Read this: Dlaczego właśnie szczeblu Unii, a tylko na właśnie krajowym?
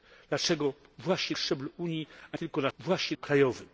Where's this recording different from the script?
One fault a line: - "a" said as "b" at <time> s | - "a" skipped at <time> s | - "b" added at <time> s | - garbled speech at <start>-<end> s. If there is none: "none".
none